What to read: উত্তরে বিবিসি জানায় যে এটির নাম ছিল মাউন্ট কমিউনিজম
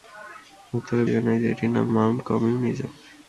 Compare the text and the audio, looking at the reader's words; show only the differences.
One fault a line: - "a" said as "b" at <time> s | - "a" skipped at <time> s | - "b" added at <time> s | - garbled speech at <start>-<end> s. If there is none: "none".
- "বিবিসি" skipped at 1.0 s
- "ছিল" skipped at 1.9 s